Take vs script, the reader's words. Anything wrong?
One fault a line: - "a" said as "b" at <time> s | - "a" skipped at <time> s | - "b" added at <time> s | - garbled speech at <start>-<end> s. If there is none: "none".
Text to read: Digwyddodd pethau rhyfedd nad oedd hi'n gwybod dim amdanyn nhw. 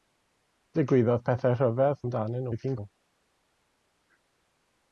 - "nad" said as "amdanyn" at 2.0 s
- "gwybod dim amdanyn" skipped at 2.8 s